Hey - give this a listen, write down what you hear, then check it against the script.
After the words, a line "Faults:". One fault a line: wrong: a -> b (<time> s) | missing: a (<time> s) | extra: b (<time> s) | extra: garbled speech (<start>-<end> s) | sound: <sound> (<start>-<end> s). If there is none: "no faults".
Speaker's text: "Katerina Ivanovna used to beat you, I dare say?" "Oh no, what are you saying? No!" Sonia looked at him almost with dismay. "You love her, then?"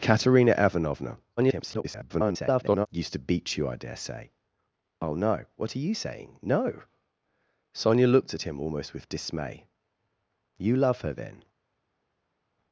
"Katerina Ivanovna [garbled] used to beat you, I dare say?" "Oh no, what are you saying? No!" Sonia looked at him almost with dismay. "You love her, then?"
Faults:
extra: garbled speech (1.4-2.9 s)